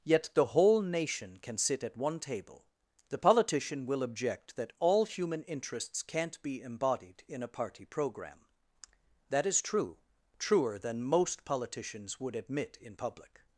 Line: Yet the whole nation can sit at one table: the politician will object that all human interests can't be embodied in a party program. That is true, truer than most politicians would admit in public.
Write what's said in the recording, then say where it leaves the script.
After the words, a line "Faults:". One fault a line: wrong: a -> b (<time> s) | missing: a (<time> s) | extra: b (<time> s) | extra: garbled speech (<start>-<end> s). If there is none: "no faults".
Yet the whole nation can sit at one table: the politician will object that all human interests can't be embodied in a party program. That is true, truer than most politicians would admit in public.
Faults:
no faults